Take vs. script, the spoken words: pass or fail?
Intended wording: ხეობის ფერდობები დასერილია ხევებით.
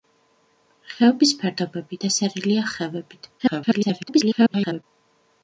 fail